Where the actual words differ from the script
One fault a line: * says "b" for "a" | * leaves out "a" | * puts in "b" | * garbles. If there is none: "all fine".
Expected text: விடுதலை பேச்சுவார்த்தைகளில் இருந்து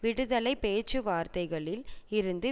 all fine